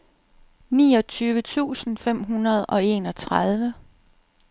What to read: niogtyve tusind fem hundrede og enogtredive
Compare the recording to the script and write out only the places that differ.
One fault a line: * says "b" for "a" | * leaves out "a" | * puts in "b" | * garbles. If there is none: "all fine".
all fine